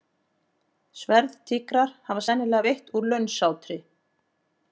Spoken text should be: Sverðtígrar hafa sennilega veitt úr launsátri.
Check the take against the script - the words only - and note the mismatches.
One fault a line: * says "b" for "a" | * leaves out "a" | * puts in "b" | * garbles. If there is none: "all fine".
all fine